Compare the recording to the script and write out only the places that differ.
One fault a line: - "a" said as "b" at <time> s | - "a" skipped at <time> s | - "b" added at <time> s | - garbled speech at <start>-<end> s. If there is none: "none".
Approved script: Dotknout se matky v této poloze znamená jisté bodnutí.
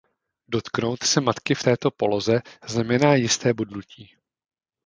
none